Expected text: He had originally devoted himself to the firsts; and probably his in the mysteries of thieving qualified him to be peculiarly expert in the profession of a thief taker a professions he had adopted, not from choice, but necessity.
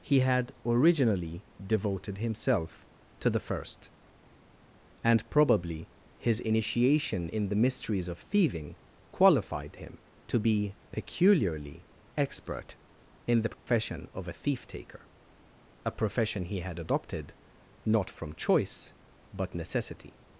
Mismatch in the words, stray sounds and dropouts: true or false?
true